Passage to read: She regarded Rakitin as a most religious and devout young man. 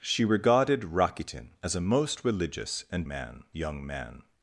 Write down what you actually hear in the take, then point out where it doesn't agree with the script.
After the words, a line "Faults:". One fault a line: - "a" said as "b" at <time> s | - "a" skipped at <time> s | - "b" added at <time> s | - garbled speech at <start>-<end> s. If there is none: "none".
She regarded Rakitin as a most religious and man young man.
Faults:
- "devout" said as "man" at 3.1 s